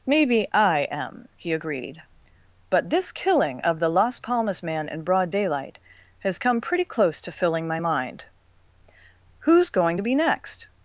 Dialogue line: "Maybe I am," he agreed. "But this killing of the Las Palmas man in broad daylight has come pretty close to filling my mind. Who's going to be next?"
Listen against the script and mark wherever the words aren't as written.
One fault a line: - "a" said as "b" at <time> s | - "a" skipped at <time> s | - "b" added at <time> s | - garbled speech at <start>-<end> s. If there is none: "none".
none